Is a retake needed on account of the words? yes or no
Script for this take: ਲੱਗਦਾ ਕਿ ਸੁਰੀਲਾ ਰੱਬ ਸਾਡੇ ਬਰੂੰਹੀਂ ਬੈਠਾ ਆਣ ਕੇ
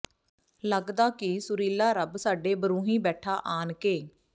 no